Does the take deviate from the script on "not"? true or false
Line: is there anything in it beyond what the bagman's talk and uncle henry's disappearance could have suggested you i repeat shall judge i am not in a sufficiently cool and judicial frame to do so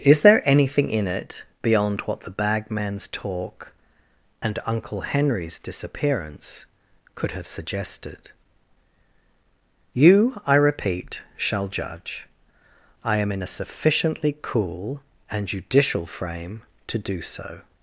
true